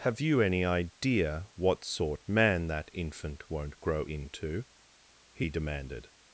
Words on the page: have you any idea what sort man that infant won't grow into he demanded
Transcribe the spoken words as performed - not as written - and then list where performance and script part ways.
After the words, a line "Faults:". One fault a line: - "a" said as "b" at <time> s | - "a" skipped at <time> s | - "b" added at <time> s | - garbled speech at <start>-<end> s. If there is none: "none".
have you any idea what sort man that infant won't grow into he demanded
Faults:
none